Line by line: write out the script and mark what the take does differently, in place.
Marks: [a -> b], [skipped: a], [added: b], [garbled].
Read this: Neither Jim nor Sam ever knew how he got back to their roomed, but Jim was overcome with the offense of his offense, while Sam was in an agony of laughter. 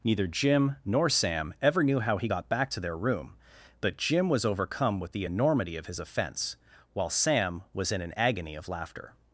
Neither Jim nor Sam ever knew how he got back to their [roomed, -> room] but Jim was overcome with the [offense -> enormity] of his offense, while Sam was in an agony of laughter.